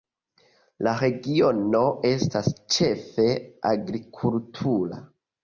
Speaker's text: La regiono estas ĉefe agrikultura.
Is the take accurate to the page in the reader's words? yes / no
yes